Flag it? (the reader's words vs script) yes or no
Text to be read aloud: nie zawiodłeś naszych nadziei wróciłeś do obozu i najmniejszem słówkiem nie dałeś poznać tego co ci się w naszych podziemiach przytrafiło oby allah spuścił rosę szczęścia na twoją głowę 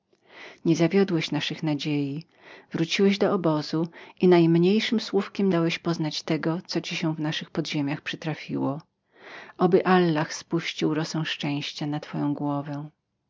yes